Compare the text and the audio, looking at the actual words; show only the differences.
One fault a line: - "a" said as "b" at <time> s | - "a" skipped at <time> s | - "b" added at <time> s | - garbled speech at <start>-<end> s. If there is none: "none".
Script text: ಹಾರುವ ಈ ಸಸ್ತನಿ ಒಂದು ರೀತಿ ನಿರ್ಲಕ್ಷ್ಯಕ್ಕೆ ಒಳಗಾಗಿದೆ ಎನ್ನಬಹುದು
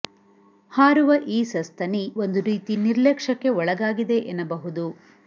none